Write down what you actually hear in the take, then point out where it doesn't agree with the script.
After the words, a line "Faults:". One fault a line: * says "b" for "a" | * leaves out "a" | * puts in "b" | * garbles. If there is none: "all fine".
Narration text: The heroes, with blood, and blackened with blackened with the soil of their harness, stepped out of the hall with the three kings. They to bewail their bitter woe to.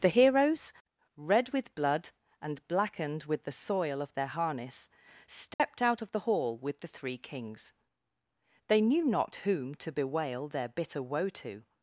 The heroes, red with blood, and blackened with the soil of their harness, stepped out of the hall with the three kings. They knew not whom to bewail their bitter woe to.
Faults:
* puts in "red"
* leaves out "blackened with"
* puts in "knew not whom"